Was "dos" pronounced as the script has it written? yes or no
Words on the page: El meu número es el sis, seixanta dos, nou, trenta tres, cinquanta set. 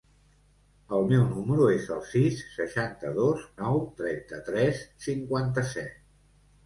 yes